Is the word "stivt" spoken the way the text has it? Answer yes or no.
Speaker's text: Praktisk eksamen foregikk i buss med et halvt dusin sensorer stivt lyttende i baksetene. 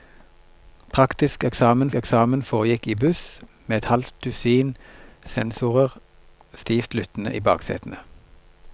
yes